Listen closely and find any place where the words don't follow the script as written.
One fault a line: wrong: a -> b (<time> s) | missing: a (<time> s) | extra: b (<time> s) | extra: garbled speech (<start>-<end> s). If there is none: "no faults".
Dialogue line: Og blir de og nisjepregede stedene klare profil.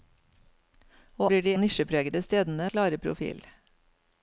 no faults